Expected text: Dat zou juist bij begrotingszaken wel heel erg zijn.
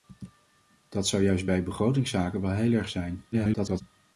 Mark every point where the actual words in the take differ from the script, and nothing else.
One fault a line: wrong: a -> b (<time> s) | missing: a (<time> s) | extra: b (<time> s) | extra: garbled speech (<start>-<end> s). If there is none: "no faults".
extra: garbled speech (3.3-3.8 s)